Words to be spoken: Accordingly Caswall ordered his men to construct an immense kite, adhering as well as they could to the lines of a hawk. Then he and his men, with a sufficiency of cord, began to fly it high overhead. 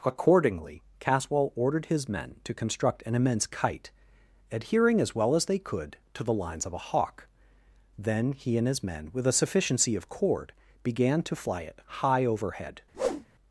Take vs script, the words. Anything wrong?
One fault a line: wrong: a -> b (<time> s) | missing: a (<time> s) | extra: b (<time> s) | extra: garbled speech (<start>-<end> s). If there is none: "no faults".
no faults